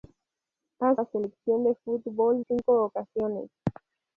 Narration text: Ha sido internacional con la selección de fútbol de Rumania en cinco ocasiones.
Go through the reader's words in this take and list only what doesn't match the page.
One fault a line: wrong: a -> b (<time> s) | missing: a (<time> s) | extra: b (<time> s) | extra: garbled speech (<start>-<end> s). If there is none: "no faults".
missing: sido internacional con (0.9 s)
missing: de Rumania en (2.4 s)